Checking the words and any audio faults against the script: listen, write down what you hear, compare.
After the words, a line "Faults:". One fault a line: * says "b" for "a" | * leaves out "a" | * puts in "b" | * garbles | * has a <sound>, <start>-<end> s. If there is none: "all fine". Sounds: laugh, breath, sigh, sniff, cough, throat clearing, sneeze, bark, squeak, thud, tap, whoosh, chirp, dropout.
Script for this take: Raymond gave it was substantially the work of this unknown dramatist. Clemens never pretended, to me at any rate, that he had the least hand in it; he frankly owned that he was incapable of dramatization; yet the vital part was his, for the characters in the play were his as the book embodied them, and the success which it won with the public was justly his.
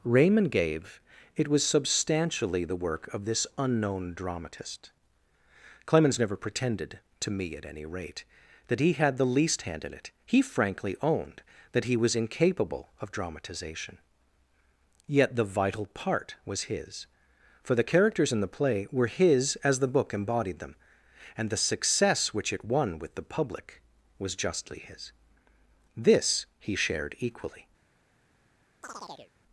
Raymond gave it was substantially the work of this unknown dramatist. Clemens never pretended, to me at any rate, that he had the least hand in it; he frankly owned that he was incapable of dramatization; yet the vital part was his, for the characters in the play were his as the book embodied them, and the success which it won with the public was justly his. This he shared equally
Faults:
* puts in "This he shared equally"
* has a chirp, 28.8-29.3 s